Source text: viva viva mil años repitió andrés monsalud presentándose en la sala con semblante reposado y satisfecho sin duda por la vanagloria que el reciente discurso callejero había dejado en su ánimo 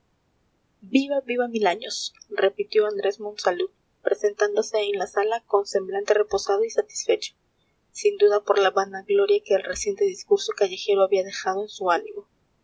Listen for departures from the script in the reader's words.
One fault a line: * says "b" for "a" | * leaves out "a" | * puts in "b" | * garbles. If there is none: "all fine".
all fine